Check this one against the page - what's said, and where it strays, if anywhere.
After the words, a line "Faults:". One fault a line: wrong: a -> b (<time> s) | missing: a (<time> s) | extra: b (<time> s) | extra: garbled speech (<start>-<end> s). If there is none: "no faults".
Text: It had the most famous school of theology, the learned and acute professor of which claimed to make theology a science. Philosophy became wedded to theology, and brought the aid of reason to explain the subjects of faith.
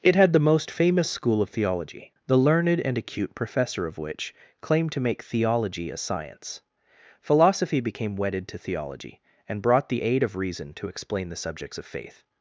It had the most famous school of theology, the learned and acute professor of which claimed to make theology a science. Philosophy became wedded to theology, and brought the aid of reason to explain the subjects of faith.
Faults:
no faults